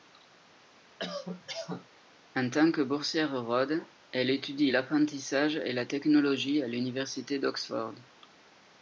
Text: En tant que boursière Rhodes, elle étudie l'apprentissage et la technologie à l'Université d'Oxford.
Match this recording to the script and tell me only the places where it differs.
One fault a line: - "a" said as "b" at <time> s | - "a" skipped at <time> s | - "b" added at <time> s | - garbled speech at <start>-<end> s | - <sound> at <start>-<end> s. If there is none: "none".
- cough at 1.0-1.9 s